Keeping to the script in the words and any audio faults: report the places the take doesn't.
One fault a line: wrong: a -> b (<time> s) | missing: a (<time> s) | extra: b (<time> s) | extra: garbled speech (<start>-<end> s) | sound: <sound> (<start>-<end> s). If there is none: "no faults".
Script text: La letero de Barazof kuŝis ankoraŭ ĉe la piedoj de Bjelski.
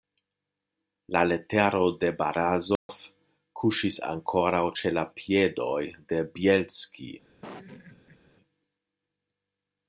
sound: dropout (2.8-2.9 s)
sound: laugh (7.4-8.2 s)